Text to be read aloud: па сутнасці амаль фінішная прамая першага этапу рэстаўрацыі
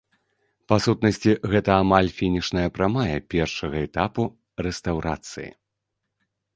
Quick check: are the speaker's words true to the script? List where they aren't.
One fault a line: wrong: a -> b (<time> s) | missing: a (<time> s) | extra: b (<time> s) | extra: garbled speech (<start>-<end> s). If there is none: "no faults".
extra: гэта (1.5 s)